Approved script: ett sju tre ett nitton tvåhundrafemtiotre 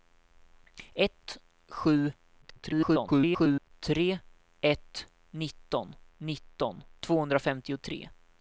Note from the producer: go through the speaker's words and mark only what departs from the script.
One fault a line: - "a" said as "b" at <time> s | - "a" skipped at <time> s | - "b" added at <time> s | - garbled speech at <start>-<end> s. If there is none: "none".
- garbled speech at 2.4-3.7 s
- "nitton" added at 6.2 s